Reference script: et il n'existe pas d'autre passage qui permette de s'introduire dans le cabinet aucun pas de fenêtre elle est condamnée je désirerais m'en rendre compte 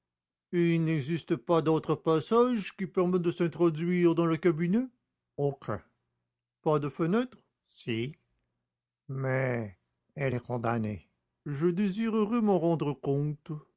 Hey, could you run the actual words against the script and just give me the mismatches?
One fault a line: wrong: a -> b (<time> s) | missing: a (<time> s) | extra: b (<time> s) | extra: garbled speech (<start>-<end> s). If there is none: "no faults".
extra: si mais (7.7 s)